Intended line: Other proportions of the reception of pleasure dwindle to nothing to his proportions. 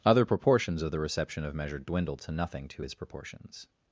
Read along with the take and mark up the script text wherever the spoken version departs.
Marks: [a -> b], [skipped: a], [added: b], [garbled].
Other proportions of the reception of [pleasure -> measure] dwindle to nothing to his proportions.